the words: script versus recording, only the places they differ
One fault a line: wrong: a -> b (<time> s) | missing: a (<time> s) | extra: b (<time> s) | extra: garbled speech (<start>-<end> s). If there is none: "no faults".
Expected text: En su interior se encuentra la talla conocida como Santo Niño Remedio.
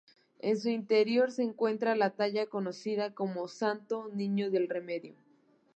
extra: del (4.5 s)